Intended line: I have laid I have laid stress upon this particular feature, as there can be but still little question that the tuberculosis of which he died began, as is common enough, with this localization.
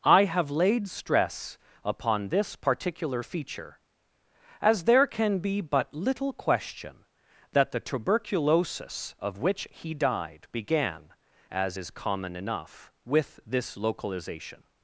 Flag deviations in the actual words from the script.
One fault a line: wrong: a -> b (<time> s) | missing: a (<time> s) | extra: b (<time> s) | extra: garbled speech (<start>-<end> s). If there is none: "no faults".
missing: I have laid (0.9 s)
missing: still (5.9 s)